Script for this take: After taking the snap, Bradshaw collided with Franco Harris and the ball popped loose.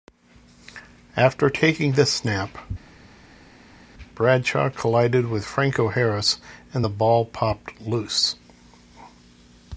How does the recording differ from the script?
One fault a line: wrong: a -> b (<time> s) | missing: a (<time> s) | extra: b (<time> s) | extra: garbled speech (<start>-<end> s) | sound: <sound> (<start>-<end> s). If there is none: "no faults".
no faults